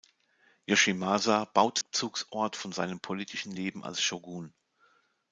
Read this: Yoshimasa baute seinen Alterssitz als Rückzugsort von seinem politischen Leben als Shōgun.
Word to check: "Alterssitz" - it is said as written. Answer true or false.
false